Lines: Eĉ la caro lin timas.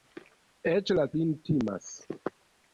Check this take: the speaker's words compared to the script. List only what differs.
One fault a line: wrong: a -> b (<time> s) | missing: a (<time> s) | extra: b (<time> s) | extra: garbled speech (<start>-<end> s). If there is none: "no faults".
missing: caro (1.0 s)